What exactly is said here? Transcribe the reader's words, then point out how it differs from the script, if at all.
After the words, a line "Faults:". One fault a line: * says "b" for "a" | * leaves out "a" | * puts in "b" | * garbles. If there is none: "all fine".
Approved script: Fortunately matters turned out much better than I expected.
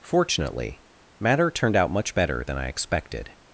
Fortunately matter turned out much better than I expected.
Faults:
* says "matter" for "matters"